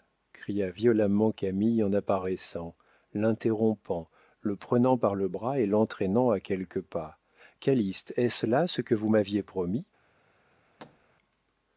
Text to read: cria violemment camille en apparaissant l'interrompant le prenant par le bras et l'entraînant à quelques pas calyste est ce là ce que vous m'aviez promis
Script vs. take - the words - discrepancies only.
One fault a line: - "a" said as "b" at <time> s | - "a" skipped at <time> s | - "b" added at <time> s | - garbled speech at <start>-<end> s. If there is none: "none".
none